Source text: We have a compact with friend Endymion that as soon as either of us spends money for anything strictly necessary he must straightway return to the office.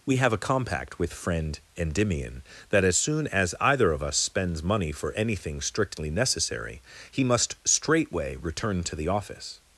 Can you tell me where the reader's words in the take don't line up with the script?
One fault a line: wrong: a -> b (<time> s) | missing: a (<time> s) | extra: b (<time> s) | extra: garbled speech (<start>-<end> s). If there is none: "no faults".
no faults